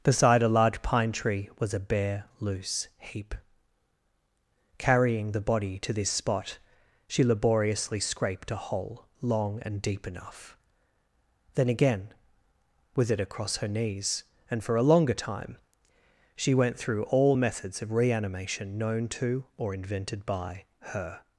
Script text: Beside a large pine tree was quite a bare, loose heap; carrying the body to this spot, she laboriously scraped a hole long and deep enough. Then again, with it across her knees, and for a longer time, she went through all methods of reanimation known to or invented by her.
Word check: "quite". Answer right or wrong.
wrong